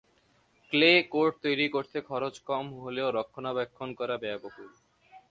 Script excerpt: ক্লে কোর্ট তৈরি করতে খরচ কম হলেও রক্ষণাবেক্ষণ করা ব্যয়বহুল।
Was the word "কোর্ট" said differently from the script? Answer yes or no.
no